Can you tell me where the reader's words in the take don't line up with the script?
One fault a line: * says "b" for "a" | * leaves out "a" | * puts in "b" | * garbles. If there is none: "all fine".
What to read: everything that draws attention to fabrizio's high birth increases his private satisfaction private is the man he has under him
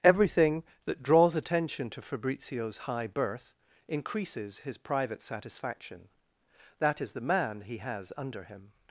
* says "that" for "private"